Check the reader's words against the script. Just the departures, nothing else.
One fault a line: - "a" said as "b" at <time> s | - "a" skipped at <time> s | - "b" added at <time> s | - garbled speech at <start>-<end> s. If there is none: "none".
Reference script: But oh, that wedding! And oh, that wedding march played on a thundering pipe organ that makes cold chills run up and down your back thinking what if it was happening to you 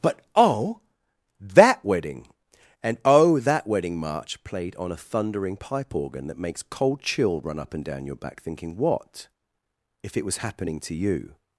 - "chills" said as "chill" at 7.0 s